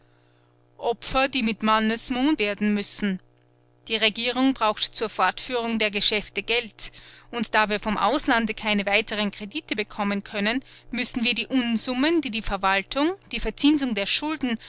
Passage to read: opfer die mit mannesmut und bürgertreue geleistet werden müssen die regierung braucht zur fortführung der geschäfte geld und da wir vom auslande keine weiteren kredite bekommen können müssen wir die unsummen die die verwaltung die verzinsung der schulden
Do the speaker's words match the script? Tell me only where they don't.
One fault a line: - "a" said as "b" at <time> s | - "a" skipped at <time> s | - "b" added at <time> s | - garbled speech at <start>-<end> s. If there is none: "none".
- "und bürgertreue geleistet" skipped at 2.4 s